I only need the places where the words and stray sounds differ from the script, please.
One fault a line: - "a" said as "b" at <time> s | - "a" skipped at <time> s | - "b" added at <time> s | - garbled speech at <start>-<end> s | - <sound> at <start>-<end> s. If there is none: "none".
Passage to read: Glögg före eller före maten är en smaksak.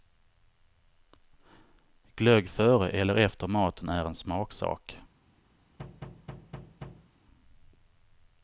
- "före" said as "efter" at 3.1 s
- thud at 5.8-7.1 s